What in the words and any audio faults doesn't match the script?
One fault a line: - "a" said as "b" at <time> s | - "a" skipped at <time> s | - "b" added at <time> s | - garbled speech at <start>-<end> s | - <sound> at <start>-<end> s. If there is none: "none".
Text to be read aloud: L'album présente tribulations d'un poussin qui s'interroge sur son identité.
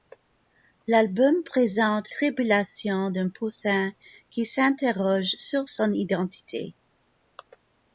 none